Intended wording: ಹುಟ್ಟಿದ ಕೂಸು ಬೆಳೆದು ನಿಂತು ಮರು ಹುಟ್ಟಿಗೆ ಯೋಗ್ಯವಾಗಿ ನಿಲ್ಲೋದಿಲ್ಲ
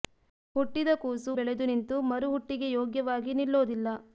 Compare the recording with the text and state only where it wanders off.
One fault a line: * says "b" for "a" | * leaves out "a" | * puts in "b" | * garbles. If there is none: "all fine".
all fine